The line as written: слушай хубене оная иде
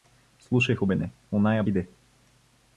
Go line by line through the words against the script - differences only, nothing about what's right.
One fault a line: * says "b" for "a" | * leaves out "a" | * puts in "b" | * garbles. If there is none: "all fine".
all fine